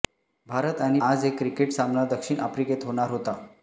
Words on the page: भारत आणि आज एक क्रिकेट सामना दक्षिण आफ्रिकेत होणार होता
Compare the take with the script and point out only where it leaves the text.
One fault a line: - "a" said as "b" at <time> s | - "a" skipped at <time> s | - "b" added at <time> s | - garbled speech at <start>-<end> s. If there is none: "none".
none